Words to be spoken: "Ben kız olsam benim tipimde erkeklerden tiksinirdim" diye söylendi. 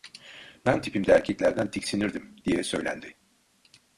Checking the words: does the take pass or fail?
fail